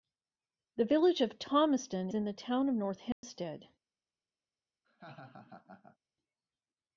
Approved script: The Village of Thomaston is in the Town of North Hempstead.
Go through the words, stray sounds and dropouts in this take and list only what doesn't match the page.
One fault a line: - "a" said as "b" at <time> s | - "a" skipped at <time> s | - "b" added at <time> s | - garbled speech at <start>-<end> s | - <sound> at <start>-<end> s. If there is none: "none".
- "is" skipped at 2.1 s
- dropout at 3.1-3.2 s
- laugh at 4.8-6.0 s